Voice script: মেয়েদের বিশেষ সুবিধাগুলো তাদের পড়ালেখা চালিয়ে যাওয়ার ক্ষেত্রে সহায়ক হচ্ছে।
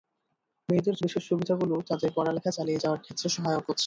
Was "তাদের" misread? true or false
false